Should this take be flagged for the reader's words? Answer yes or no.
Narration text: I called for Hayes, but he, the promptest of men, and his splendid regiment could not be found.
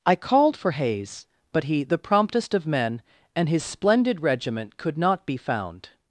no